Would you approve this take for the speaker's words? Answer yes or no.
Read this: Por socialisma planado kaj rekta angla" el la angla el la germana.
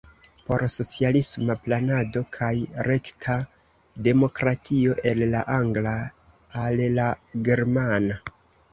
no